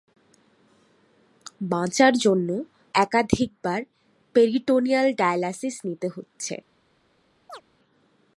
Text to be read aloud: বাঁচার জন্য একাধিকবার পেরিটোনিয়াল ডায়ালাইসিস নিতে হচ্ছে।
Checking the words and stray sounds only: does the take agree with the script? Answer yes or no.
no